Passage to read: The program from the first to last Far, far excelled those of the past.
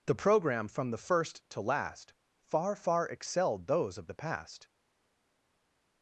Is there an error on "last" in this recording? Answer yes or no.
no